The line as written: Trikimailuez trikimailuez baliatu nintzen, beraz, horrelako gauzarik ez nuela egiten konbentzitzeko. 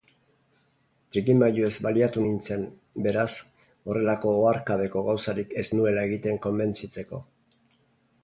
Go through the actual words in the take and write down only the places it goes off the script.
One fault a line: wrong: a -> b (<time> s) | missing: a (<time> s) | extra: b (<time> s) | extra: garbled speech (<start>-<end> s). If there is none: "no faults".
missing: trikimailuez (1.7 s)
extra: oharkabeko (4.4 s)